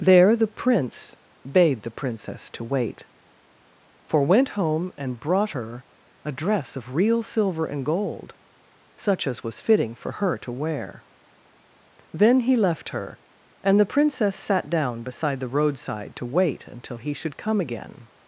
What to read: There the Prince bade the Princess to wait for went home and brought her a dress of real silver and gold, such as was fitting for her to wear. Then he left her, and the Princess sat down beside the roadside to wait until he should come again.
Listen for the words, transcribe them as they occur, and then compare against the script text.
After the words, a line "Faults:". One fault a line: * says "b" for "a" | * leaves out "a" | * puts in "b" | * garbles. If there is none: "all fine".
There the Prince bade the Princess to wait for went home and brought her a dress of real silver and gold, such as was fitting for her to wear. Then he left her, and the Princess sat down beside the roadside to wait until he should come again.
Faults:
all fine